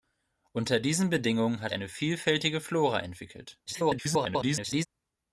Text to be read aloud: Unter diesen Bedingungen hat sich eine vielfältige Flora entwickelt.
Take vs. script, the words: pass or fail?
fail